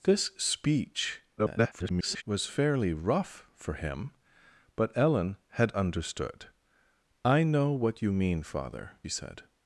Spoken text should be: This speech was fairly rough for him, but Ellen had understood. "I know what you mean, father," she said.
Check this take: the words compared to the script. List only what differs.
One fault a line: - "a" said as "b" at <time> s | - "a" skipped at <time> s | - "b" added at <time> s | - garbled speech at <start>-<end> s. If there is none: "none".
- garbled speech at 1.4-2.2 s
- "she" skipped at 9.0 s